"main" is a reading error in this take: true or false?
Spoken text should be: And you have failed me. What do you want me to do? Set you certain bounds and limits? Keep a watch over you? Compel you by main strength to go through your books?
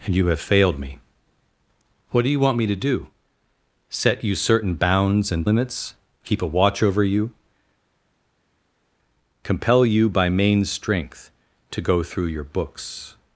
false